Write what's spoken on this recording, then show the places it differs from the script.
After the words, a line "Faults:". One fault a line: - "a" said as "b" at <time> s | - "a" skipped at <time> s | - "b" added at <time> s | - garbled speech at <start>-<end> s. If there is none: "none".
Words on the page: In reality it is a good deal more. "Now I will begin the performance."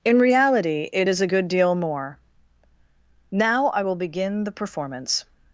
In reality it is a good deal more. "Now I will begin the performance."
Faults:
none